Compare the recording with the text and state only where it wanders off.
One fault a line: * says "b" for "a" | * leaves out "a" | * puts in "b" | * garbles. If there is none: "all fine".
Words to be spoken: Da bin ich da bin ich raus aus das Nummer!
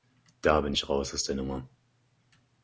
* leaves out "da bin ich"
* says "der" for "das"